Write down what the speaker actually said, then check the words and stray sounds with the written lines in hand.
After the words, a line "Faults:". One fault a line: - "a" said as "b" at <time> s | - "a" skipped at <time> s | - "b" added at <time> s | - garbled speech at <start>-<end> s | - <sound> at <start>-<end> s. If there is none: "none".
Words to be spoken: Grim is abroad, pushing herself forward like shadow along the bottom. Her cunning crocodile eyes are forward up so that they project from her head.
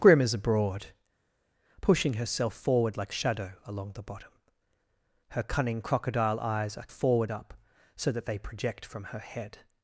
Grim is abroad, pushing herself forward like shadow along the bottom. Her cunning crocodile eyes are forward up so that they project from her head.
Faults:
none